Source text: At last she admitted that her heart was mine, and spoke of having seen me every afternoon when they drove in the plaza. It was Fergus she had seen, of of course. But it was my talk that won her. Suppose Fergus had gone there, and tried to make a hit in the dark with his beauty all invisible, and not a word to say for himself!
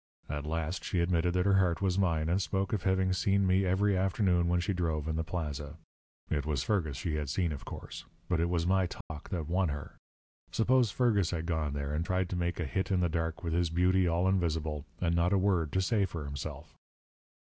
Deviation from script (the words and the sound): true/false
true